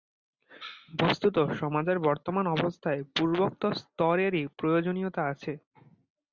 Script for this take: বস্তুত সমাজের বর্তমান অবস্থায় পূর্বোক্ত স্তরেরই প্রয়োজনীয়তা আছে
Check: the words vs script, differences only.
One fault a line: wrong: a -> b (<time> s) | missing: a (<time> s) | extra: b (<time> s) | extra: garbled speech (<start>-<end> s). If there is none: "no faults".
no faults